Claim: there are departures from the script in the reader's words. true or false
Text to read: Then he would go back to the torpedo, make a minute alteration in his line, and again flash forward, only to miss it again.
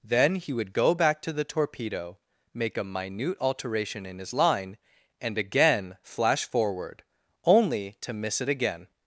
false